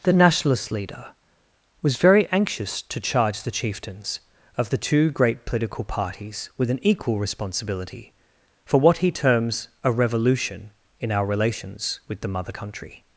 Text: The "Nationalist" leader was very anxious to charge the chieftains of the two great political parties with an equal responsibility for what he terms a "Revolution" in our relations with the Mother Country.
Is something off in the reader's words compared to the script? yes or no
no